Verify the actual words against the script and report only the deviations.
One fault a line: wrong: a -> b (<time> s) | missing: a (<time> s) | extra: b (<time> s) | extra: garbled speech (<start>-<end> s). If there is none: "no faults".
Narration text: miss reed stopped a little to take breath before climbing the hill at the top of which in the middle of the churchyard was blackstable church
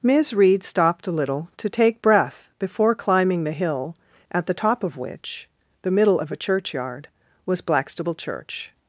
missing: in (5.5 s)
wrong: the -> a (6.3 s)